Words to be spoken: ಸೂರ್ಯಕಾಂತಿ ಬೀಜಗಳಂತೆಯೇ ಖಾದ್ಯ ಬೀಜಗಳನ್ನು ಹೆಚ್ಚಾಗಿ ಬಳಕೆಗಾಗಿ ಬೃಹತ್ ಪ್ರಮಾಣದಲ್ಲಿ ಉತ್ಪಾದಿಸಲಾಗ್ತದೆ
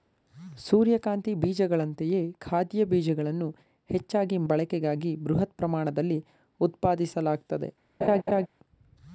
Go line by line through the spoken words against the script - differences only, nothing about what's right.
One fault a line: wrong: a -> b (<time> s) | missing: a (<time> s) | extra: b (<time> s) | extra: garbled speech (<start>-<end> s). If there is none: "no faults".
no faults